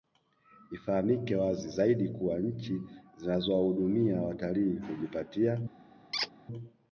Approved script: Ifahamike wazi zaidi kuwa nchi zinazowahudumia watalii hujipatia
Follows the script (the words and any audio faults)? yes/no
no